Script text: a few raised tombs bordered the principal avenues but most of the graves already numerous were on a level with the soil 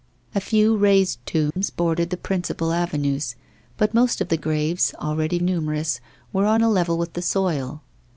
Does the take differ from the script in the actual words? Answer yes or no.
no